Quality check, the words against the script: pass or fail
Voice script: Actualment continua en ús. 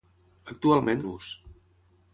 fail